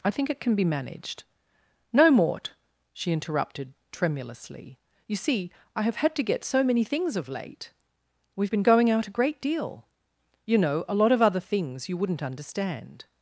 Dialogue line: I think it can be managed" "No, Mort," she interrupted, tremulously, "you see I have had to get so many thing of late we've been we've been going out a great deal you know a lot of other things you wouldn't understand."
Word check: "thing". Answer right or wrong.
wrong